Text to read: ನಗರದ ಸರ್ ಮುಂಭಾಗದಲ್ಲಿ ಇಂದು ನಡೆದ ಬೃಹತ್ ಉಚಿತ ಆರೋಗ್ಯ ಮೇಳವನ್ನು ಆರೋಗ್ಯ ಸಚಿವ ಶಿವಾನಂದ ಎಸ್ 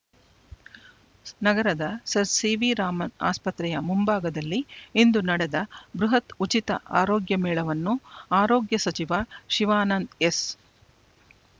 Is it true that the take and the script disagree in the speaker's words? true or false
true